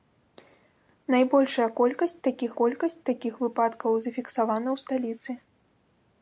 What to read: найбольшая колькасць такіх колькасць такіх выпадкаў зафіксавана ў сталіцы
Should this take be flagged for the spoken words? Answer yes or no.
no